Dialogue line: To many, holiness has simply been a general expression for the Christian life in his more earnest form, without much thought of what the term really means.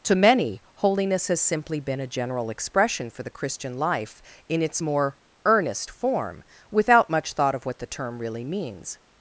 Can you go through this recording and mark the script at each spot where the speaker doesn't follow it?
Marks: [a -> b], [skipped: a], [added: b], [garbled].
To many, holiness has simply been a general expression for the Christian life in [his -> its] more earnest form, without much thought of what the term really means.